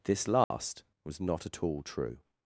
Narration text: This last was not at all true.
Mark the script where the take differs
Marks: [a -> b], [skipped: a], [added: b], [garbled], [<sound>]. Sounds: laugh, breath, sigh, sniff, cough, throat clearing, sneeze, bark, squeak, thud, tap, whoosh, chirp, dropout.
This last [dropout] was not at all true.